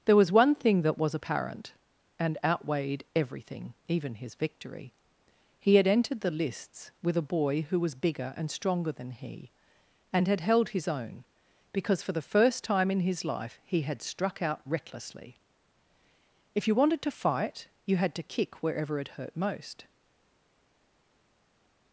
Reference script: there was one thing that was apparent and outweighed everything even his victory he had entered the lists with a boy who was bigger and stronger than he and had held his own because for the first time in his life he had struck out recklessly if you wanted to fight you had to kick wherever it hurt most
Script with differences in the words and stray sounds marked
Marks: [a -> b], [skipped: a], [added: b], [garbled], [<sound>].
there was one thing that was apparent and outweighed everything even his victory he had entered the lists with a boy who was bigger and stronger than he and had held his own because for the first time in his life he had struck out recklessly if you wanted to fight you had to kick wherever it hurt most